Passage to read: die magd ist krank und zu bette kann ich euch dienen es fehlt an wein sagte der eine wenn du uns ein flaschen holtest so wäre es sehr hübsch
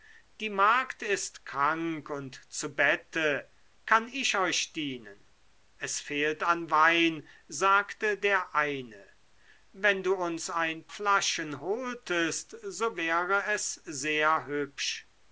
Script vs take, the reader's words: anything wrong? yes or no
no